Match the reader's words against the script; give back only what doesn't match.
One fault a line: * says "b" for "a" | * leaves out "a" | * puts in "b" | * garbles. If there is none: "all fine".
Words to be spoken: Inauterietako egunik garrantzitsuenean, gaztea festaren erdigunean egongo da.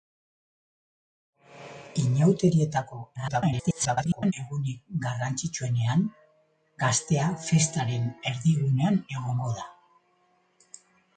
* garbles